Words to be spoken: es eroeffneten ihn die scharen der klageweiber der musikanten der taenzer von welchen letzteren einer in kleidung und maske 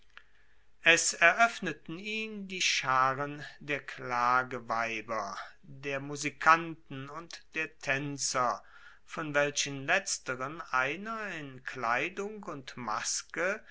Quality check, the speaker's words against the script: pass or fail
fail